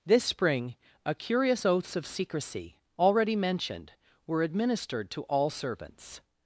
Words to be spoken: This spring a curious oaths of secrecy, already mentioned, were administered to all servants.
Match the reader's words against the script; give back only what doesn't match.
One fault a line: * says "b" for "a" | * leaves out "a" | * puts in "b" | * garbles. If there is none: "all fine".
all fine